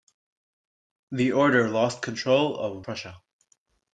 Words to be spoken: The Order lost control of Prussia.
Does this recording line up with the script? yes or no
yes